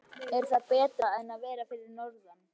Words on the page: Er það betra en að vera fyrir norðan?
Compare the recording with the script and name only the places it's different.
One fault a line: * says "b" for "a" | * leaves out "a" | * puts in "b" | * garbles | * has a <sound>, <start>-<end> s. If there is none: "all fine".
all fine